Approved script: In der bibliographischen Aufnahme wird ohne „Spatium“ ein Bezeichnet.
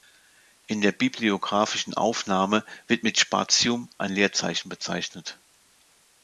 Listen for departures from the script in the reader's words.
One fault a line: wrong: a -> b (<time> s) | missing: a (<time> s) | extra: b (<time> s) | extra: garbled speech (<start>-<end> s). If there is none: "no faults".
wrong: ohne -> mit (3.0 s)
extra: Leerzeichen (4.1 s)